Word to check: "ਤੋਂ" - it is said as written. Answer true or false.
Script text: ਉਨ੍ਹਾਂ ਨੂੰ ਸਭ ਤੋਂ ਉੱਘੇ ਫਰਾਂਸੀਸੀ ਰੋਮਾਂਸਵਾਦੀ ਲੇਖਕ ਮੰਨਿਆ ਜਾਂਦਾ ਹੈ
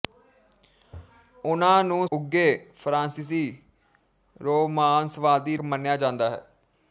false